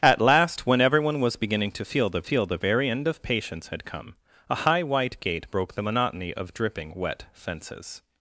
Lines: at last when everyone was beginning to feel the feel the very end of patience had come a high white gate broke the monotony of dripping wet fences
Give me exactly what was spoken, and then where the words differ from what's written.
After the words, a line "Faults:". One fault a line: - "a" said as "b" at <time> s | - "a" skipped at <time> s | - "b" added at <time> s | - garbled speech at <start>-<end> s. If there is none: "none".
at last when everyone was beginning to feel the feel the very end of patience had come a high white gate broke the monotony of dripping wet fences
Faults:
none